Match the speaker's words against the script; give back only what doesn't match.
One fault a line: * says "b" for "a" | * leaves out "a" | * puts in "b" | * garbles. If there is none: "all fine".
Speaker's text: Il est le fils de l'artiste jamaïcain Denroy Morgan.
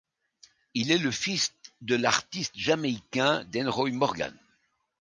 all fine